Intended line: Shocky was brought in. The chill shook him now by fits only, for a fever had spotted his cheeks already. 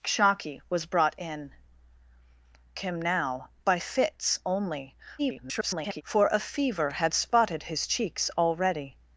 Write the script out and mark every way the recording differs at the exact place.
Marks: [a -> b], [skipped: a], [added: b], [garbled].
Shocky was brought in. [skipped: The chill shook] him now by fits only, [garbled] for a fever had spotted his cheeks already.